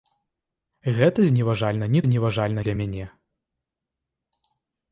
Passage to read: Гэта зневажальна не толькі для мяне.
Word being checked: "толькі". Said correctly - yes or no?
no